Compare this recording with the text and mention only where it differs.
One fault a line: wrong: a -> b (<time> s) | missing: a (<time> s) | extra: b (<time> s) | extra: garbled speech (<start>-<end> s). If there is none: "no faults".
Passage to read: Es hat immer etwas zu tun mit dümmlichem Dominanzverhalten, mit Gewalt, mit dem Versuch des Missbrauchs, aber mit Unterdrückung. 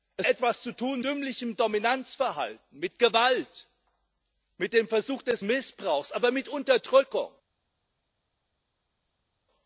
missing: hat immer (0.3 s)
missing: mit (1.0 s)